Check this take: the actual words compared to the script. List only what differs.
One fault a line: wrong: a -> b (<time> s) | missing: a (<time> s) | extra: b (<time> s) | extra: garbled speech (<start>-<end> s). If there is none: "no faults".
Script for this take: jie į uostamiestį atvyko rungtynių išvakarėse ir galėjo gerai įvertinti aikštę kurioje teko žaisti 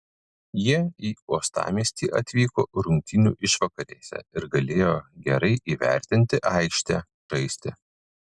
missing: kurioje teko (7.0 s)